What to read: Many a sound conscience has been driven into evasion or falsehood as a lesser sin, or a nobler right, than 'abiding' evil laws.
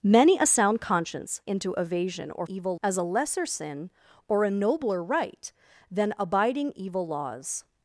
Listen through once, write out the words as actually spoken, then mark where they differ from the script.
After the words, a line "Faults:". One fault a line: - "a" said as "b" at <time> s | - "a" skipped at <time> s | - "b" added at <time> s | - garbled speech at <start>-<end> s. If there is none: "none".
Many a sound conscience into evasion or evil as a lesser sin, or a nobler right, than 'abiding' evil laws.
Faults:
- "has been driven" skipped at 1.4 s
- "falsehood" said as "evil" at 2.4 s